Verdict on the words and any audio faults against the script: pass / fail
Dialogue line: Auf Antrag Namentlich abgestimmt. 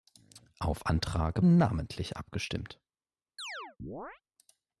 fail